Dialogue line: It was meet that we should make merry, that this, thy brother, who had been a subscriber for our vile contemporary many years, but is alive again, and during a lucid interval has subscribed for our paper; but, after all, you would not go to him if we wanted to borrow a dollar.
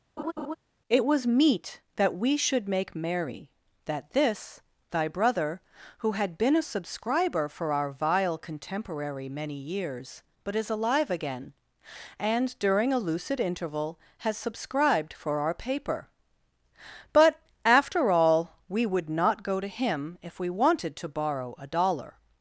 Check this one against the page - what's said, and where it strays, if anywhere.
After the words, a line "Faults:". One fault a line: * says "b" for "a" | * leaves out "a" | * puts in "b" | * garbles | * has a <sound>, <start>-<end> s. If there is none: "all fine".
It was meet that we should make merry, that this, thy brother, who had been a subscriber for our vile contemporary many years, but is alive again, and during a lucid interval has subscribed for our paper; but, after all, we would not go to him if we wanted to borrow a dollar.
Faults:
* has a laugh, 0.2-0.6 s
* says "we" for "you"